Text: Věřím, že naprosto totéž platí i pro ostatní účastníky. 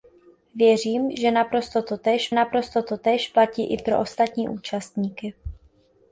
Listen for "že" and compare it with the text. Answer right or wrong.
right